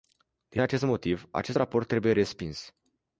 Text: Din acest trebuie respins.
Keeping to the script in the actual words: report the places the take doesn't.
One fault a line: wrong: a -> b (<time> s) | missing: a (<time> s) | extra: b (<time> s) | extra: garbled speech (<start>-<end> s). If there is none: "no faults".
extra: motiv acest raport (0.8 s)